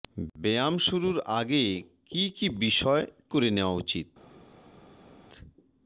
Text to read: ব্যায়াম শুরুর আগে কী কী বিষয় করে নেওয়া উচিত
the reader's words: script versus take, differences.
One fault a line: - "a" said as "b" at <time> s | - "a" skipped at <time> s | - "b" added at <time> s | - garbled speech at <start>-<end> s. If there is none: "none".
none